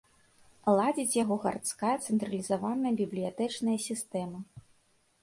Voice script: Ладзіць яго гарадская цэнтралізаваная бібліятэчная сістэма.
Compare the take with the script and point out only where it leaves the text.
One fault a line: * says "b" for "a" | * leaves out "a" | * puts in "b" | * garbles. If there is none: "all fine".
all fine